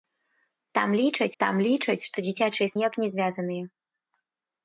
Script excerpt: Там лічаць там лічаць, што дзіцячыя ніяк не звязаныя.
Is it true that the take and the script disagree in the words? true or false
false